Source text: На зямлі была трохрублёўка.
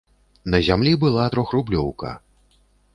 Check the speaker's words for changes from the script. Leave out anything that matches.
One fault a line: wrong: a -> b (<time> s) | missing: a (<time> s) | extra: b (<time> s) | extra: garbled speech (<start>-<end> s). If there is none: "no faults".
no faults